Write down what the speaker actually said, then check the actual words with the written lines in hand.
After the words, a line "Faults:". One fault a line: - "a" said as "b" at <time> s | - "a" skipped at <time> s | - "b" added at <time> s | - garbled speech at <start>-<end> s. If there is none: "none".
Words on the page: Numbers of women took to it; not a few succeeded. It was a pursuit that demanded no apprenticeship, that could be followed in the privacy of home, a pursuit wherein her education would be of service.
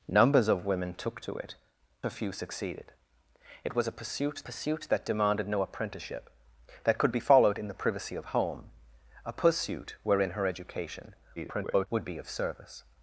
Numbers of women took to it; a few succeeded. It was a pursuit pursuit that demanded no apprenticeship, that could be followed in the privacy of home, a pursuit wherein her education [garbled] would be of service.
Faults:
- "not" skipped at 1.6 s
- "pursuit" added at 4.5 s
- garbled speech at 11.4-11.9 s